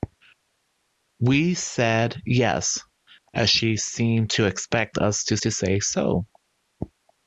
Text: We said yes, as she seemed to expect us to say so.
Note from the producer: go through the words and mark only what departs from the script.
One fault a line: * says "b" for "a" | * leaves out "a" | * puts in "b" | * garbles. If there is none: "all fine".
* puts in "to"